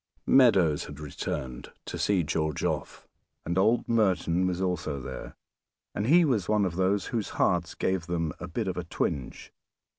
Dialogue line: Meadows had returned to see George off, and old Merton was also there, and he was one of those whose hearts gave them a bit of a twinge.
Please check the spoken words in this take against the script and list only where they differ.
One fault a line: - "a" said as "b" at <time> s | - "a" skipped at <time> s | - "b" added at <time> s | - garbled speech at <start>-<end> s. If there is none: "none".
none